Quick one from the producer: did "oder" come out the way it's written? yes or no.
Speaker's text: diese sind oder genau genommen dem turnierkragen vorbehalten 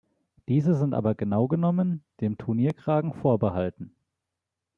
no